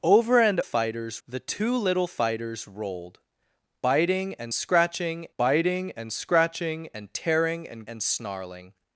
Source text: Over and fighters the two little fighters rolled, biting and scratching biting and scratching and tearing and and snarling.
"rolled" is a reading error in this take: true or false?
false